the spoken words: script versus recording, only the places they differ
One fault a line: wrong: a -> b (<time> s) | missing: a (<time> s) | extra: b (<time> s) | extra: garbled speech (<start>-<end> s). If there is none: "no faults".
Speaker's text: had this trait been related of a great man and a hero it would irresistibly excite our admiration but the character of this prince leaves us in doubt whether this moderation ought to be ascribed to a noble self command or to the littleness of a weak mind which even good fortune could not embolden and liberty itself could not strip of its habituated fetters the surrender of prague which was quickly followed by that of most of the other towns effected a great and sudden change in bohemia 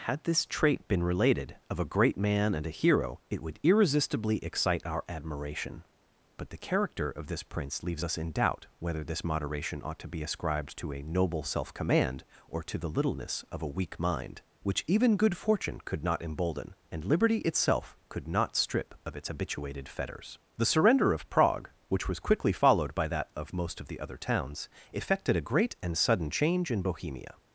no faults